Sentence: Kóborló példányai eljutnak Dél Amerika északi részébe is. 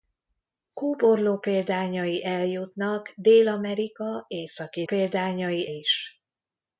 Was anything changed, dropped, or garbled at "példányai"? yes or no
no